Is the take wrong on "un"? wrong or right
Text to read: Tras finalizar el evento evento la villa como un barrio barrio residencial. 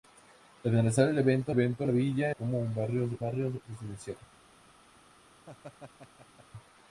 right